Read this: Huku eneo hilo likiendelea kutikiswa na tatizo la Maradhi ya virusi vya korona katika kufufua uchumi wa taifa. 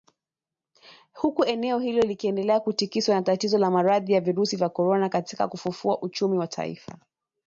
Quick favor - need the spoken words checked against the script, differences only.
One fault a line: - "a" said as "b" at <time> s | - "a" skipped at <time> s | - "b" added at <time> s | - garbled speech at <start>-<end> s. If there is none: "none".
none